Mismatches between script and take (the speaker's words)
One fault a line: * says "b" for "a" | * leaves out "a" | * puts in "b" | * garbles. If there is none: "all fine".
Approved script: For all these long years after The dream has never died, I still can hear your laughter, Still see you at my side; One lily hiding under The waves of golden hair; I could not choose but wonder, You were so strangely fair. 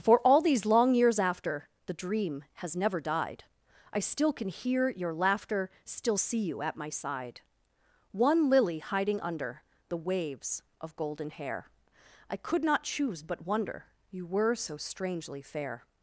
all fine